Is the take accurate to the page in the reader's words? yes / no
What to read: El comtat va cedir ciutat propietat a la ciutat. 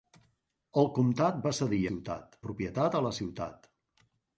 yes